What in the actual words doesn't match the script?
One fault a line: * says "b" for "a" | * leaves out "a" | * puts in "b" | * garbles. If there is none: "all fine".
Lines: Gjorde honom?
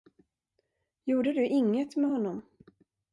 * puts in "du inget med"